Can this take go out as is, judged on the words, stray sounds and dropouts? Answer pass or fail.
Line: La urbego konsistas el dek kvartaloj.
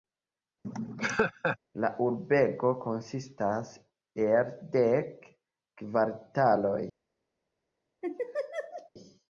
fail